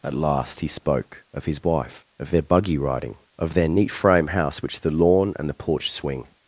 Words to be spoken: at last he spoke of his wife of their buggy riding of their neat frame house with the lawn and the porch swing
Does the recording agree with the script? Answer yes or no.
no